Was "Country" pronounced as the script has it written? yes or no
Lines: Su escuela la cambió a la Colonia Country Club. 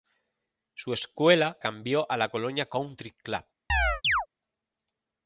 yes